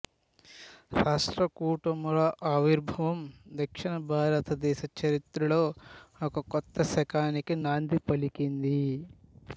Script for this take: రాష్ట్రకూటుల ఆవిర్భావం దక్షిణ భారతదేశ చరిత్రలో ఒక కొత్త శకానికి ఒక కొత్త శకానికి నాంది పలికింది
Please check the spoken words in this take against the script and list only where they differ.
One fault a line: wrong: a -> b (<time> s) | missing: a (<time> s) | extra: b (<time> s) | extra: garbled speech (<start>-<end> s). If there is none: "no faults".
missing: ఒక కొత్త శకానికి (7.5 s)